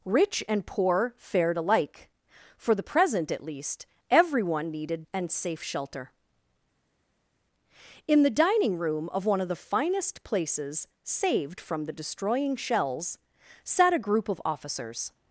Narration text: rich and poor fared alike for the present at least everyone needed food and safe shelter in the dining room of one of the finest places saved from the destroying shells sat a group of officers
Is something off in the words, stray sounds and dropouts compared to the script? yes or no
yes